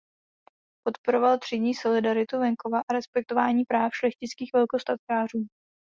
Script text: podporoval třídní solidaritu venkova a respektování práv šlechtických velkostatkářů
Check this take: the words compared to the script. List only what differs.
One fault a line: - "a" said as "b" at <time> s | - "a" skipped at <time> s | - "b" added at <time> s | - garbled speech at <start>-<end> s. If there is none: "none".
none